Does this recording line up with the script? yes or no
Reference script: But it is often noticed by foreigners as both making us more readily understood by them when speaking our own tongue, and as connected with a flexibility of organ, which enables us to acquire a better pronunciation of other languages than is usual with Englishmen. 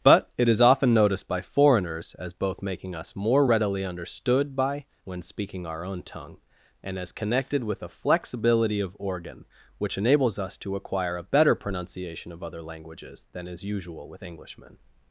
no